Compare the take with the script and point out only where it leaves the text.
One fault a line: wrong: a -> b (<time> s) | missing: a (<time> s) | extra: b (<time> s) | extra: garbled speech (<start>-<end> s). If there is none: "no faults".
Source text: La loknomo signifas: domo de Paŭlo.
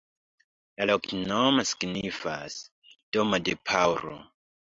no faults